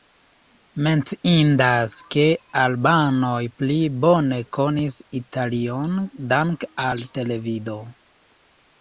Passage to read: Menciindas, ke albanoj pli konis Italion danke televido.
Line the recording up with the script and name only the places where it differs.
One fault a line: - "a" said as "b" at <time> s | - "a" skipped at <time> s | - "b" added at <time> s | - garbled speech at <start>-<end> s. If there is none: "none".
- "bone" added at 4.1 s
- "al" added at 6.9 s